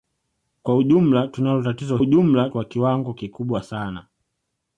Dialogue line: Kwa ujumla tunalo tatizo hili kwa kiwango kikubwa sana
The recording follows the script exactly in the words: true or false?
false